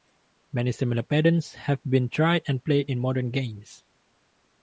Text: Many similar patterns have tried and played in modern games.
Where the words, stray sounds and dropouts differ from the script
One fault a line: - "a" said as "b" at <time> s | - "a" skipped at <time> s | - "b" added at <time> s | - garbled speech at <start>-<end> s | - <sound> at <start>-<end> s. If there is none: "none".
- "been" added at 1.9 s